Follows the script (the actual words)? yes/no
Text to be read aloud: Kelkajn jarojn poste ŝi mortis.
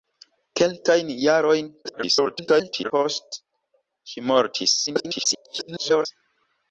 no